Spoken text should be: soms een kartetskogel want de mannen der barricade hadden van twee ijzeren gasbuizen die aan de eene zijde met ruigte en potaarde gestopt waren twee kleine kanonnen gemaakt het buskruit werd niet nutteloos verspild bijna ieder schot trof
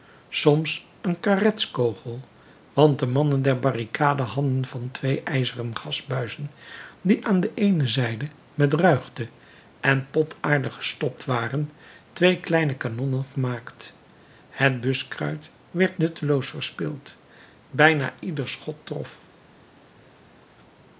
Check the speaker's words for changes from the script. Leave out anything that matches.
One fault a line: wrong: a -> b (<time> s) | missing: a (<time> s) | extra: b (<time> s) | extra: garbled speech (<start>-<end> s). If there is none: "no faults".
missing: niet (16.0 s)